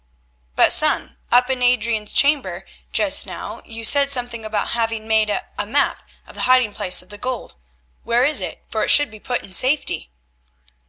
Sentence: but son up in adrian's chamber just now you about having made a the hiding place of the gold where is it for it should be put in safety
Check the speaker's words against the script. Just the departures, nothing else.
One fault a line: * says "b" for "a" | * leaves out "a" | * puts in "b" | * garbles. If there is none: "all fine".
* puts in "said something"
* puts in "map of"